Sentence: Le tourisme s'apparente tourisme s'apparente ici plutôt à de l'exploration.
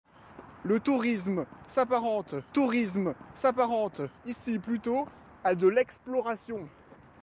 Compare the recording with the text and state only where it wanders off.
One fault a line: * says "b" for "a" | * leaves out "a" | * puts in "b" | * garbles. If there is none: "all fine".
all fine